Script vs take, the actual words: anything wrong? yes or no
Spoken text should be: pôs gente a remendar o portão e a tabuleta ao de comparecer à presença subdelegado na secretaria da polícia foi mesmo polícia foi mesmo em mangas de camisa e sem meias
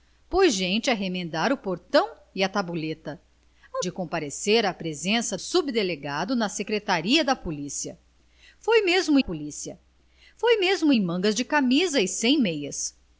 no